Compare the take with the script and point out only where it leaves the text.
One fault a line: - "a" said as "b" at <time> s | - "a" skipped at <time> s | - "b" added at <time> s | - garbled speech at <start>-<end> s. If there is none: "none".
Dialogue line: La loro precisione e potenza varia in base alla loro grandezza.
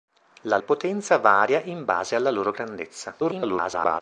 - "loro precisione" skipped at 0.6 s
- garbled speech at 3.2-4.0 s